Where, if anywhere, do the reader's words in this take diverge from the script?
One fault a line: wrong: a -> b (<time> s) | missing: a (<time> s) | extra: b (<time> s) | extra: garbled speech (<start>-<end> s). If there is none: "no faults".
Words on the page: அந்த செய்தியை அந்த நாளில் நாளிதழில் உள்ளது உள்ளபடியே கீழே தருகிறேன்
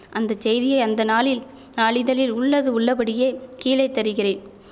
no faults